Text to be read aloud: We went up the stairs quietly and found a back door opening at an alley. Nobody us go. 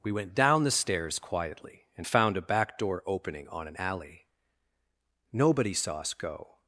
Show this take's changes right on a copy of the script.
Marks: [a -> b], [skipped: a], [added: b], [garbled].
We went [up -> down] the stairs quietly and found a back door opening [at -> on] an alley. Nobody [added: saw] us go.